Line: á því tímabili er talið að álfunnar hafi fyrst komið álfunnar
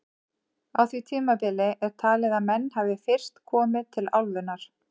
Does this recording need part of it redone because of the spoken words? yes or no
yes